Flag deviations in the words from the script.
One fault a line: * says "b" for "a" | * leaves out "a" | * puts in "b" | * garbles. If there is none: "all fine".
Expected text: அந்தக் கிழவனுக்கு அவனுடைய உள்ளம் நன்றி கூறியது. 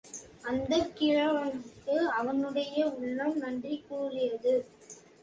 all fine